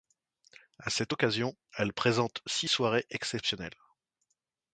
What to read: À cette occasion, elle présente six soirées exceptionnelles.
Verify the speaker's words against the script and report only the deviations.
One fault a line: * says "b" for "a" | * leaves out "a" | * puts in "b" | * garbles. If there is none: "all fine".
all fine